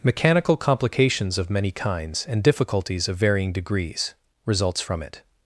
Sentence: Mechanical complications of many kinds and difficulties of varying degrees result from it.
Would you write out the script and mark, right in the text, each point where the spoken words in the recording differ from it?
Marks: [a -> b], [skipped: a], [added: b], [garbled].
Mechanical complications of many kinds and difficulties of varying degrees [result -> results] from it.